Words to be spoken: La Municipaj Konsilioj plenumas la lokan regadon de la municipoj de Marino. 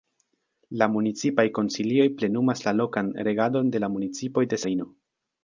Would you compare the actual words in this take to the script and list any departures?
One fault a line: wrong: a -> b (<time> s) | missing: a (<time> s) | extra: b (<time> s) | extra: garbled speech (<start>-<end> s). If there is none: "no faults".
no faults